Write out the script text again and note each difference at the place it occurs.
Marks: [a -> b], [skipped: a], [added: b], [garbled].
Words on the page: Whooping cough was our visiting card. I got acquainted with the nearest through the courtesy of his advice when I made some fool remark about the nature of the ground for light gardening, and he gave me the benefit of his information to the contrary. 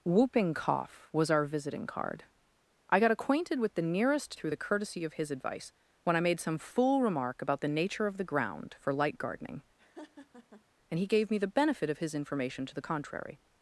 Whooping cough was our visiting card. I got acquainted with the nearest through the courtesy of his advice when I made some fool remark about the nature of the ground for light gardening, and he gave me the benefit of his information to the contrary.